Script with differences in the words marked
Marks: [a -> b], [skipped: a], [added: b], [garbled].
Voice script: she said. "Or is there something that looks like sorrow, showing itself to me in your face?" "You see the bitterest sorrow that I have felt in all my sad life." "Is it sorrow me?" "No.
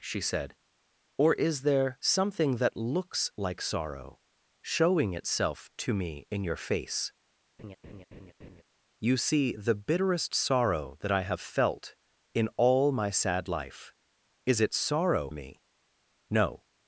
she said. "Or is there something that looks like sorrow, showing itself to me in your face?" "You see the bitterest sorrow that I have felt in all my sad life." "Is it sorrow me?" "No.